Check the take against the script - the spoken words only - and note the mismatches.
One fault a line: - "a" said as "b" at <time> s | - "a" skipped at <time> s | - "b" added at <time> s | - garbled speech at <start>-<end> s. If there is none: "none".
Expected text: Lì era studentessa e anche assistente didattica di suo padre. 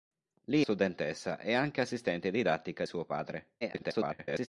- "era" skipped at 0.6 s
- "di" skipped at 2.8 s
- garbled speech at 3.6-4.5 s